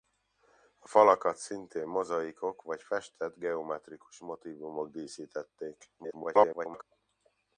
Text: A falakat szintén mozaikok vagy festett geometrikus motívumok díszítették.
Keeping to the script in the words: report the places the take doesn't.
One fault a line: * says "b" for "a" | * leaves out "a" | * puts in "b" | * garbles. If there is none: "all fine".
* garbles